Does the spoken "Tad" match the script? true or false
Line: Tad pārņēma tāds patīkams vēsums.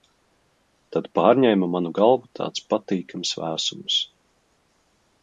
true